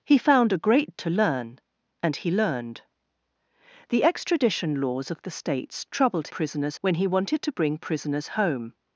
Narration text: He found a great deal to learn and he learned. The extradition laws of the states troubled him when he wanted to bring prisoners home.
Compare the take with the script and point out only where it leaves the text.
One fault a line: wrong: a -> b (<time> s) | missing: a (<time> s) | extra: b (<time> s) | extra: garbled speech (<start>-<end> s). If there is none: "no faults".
missing: deal (1.0 s)
wrong: him -> prisoners (6.3 s)